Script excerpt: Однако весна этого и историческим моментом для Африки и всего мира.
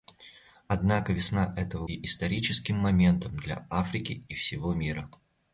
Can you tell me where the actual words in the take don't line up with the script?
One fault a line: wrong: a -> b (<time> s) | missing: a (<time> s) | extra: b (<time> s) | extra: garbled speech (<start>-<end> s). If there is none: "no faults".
no faults